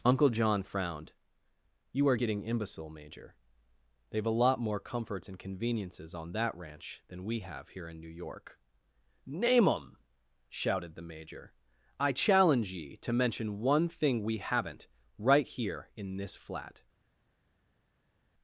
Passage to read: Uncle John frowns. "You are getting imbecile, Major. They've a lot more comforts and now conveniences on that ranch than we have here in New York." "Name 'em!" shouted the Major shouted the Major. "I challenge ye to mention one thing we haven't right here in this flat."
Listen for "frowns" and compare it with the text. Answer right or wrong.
wrong